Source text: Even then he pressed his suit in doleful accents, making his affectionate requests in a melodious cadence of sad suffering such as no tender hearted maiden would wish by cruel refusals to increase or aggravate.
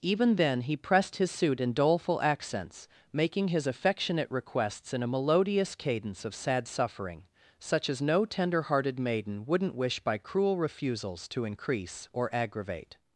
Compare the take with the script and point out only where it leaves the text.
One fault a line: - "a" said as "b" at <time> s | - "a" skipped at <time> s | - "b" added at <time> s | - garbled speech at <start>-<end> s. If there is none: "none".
- "would" said as "wouldn't" at 9.4 s